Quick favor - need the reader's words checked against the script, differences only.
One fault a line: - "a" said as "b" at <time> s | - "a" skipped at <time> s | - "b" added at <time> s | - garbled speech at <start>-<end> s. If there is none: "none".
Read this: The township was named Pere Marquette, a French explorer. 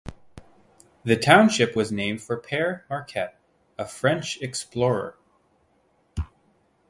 - "for" added at 2.2 s